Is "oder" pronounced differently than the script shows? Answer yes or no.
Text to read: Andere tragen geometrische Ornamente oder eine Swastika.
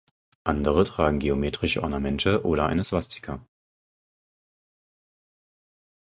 no